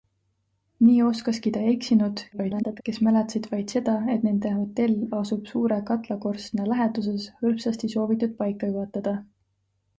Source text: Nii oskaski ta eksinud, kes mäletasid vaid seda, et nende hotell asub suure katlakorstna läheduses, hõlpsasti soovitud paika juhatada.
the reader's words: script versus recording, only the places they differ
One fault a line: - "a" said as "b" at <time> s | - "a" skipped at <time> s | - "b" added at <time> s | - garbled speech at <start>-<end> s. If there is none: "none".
- garbled speech at 2.3-2.8 s